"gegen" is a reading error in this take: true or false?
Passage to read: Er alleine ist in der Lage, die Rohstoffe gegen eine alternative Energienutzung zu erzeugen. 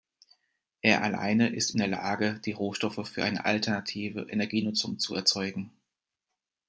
true